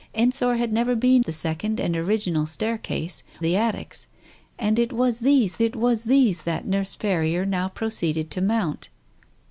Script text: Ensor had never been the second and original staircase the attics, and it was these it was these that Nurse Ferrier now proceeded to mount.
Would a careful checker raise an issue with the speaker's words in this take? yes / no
no